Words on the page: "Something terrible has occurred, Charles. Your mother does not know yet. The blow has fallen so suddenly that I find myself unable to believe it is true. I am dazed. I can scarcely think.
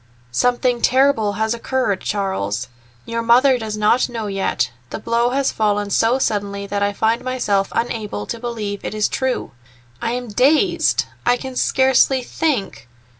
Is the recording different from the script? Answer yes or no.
no